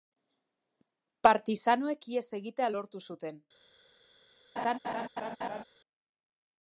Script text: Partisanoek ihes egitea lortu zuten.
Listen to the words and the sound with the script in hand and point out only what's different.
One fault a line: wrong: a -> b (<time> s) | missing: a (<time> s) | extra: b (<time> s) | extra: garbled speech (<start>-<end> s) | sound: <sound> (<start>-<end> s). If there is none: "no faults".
sound: laugh (4.6-5.6 s)